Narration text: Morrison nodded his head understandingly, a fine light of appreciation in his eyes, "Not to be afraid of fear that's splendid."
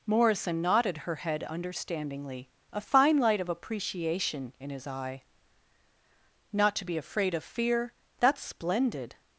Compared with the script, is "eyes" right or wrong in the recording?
wrong